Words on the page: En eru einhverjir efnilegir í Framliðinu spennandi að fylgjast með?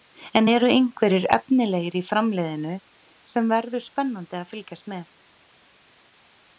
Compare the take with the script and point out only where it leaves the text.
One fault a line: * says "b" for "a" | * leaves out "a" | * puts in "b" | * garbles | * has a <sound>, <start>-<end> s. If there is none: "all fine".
* puts in "sem verður"